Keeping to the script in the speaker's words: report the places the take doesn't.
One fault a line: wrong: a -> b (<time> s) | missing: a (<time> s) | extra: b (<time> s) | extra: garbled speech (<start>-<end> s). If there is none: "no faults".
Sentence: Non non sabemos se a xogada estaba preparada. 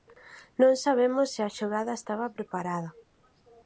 missing: non (0.7 s)